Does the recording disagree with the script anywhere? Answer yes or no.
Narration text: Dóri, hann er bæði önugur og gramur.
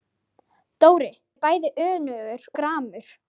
yes